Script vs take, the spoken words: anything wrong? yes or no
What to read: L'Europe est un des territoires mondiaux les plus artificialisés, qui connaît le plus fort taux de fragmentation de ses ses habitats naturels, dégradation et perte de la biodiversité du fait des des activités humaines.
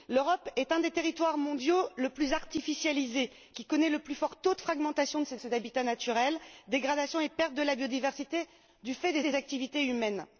no